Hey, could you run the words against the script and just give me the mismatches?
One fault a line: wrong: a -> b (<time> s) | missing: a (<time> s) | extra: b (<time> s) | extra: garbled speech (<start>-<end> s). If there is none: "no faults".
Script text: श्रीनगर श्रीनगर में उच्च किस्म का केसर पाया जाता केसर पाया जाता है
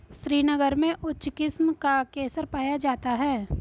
missing: श्रीनगर (0.8 s)
missing: केसर पाया जाता (3.1 s)